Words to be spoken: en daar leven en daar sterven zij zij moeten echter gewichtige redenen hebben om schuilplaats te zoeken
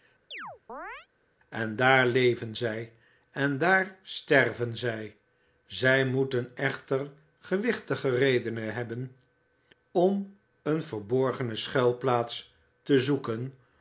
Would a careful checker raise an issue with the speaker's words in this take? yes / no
yes